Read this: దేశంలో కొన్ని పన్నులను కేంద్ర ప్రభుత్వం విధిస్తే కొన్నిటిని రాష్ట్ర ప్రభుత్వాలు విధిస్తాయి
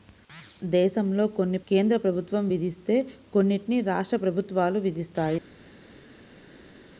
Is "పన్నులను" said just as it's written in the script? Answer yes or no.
no